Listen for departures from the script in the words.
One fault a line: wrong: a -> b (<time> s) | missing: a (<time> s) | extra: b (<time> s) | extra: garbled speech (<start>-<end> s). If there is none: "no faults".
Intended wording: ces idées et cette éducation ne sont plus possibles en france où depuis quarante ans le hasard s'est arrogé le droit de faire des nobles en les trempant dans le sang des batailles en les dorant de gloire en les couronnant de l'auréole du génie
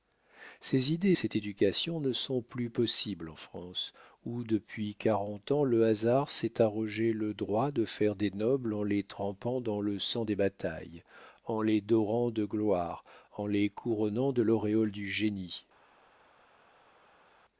no faults